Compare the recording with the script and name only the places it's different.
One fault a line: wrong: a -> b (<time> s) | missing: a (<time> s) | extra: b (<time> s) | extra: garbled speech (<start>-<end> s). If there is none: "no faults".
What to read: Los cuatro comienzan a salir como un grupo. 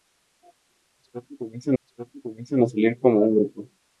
extra: los cuatro comienzan (1.8 s)